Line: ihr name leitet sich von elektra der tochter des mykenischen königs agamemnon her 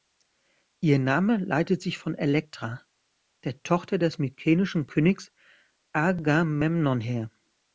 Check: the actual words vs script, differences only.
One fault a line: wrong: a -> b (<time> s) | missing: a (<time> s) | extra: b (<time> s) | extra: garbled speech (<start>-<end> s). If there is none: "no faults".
no faults